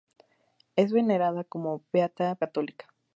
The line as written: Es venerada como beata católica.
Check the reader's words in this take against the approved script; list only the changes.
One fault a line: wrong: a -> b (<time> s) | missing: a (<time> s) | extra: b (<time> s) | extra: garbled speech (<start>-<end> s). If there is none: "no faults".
no faults